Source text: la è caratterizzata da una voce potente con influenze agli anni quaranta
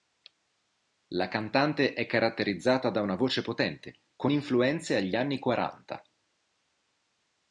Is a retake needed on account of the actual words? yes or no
yes